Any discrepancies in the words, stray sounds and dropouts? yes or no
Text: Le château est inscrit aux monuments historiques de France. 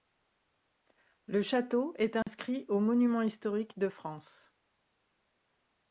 yes